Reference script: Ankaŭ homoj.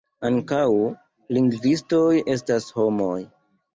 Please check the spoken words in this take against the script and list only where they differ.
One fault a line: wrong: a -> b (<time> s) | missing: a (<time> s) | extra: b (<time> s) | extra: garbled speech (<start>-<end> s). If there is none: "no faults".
extra: lingvistoj estas (1.4 s)